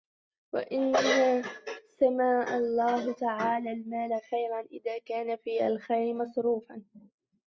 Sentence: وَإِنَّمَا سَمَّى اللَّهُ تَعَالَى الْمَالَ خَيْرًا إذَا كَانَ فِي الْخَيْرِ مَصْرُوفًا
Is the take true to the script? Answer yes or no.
yes